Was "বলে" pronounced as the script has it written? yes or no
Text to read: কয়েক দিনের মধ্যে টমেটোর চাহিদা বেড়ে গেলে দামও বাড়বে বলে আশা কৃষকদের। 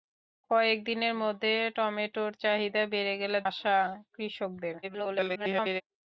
no